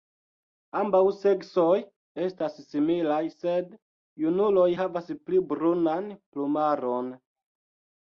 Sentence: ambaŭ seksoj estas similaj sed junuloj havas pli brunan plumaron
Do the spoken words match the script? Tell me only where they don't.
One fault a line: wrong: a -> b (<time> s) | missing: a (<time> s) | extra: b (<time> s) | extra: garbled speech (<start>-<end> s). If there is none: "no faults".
no faults